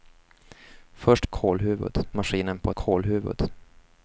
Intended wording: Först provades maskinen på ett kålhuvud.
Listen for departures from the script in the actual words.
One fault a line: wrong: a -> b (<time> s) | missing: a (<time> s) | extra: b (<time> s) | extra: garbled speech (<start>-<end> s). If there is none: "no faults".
wrong: provades -> kålhuvud (1.3 s)
missing: ett (2.7 s)